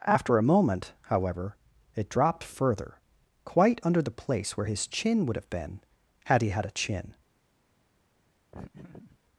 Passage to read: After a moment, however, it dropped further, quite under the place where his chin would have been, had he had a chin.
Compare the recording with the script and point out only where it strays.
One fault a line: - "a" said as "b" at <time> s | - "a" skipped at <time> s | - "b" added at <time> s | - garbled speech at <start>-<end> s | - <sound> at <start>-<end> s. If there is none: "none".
- laugh at 8.5-9.2 s